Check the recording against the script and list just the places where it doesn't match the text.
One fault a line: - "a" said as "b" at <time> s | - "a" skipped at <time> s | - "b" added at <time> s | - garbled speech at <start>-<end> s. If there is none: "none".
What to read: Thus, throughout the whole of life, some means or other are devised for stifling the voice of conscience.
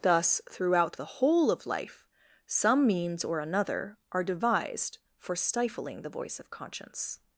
- "other" said as "another" at 3.4 s